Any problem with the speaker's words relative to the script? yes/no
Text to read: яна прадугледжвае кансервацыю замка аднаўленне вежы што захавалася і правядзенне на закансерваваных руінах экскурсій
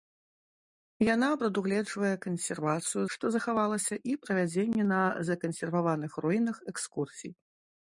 yes